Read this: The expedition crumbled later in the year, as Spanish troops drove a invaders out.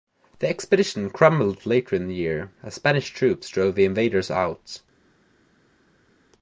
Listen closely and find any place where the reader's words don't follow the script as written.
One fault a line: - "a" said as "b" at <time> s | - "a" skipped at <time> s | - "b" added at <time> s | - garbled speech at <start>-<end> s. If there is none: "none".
- "a" said as "the" at 3.8 s